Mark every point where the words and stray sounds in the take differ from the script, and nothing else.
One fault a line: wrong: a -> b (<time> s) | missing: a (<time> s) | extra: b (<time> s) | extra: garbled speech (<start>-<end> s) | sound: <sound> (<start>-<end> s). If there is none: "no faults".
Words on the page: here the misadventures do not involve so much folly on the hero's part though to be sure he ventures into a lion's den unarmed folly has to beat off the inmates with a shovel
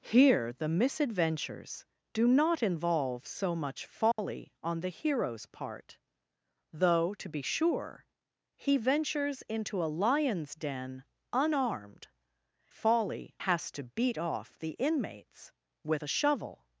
sound: dropout (4.1-4.2 s)